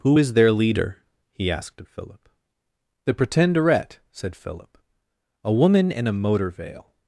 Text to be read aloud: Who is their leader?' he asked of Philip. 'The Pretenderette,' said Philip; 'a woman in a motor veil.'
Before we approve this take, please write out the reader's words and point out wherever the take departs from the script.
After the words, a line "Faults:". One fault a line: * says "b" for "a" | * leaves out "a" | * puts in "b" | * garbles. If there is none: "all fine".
Who is their leader?' he asked of Philip. 'The Pretenderette,' said Philip; 'a woman in a motor veil.'
Faults:
all fine